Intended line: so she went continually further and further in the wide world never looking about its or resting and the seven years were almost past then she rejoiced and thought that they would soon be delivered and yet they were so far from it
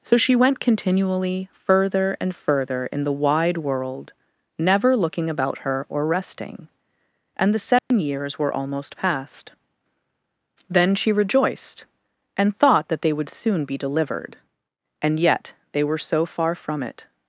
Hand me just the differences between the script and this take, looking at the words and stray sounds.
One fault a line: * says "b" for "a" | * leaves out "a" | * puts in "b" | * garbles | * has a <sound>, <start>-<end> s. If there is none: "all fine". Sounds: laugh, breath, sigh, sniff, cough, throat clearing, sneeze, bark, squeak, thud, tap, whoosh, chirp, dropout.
* says "her" for "its"
* has a dropout, 7.8-7.9 s